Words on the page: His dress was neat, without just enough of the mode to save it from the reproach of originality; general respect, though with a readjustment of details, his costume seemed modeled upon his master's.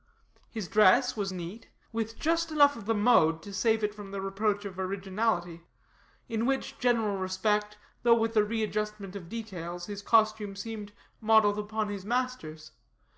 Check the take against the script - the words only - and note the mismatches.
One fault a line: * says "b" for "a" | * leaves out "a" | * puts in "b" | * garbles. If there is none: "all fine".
* says "with" for "without"
* puts in "in which"